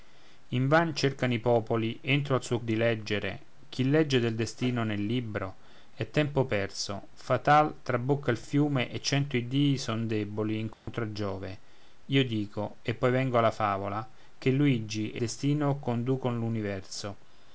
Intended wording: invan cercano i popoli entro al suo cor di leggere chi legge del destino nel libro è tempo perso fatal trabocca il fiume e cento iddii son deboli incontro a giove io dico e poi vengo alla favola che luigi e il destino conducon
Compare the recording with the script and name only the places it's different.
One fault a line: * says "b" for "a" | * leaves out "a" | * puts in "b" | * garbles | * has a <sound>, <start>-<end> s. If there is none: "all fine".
* leaves out "cor"
* has a dropout, 10.7-10.9 s
* leaves out "il"